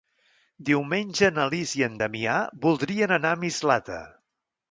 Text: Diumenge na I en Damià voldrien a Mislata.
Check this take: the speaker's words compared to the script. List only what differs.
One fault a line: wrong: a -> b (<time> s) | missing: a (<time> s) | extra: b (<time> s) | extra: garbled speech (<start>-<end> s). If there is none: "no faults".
extra: Lis (1.6 s)
extra: anar (3.2 s)